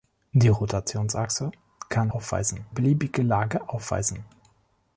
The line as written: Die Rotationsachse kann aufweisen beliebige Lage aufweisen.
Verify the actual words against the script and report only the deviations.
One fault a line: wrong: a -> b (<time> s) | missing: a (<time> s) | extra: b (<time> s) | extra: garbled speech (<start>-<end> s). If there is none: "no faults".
no faults